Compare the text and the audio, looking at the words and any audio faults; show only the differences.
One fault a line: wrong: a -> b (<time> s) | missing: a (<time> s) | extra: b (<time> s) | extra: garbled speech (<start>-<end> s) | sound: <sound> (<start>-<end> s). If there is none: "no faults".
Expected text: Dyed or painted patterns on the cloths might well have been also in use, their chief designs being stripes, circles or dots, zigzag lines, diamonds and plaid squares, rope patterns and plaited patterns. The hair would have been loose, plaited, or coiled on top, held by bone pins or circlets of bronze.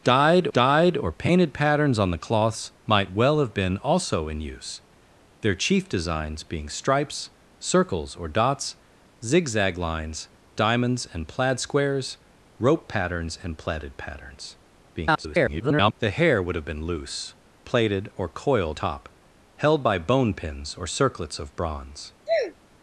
extra: dyed (0.5 s)
extra: garbled speech (14.9-15.9 s)
missing: on (18.8 s)
sound: sneeze (22.3-22.5 s)